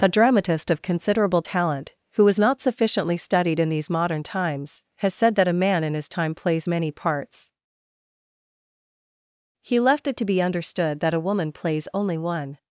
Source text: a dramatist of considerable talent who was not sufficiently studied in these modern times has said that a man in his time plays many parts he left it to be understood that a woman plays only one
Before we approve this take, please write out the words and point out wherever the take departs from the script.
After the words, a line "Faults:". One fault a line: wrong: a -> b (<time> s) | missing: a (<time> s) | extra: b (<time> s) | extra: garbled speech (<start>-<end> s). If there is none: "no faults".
a dramatist of considerable talent who was not sufficiently studied in these modern times has said that a man in his time plays many parts he left it to be understood that a woman plays only one
Faults:
no faults